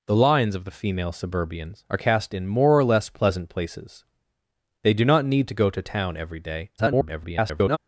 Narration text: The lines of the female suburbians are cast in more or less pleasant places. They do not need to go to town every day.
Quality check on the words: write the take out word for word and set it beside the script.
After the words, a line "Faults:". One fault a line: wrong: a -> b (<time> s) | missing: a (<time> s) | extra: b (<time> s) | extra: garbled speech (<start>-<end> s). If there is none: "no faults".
The lines of the female suburbians are cast in more or less pleasant places. They do not need to go to town every day. [garbled]
Faults:
extra: garbled speech (6.8-7.8 s)